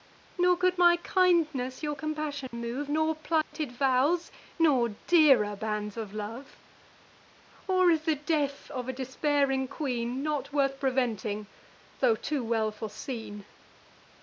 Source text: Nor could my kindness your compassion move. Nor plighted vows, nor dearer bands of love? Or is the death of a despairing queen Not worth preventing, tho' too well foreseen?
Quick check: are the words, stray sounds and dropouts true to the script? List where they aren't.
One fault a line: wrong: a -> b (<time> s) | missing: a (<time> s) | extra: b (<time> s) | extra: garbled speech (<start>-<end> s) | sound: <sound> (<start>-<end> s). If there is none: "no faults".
sound: dropout (2.5-2.5 s)
sound: dropout (3.4-3.5 s)